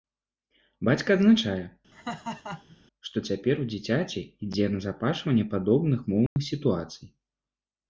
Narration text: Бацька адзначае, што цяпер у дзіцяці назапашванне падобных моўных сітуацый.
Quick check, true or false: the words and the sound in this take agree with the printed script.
false